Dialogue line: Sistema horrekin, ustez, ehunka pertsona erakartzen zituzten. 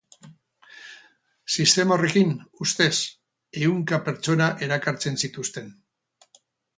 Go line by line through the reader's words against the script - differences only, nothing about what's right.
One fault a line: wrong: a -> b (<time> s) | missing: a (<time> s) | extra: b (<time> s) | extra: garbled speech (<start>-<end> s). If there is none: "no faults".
no faults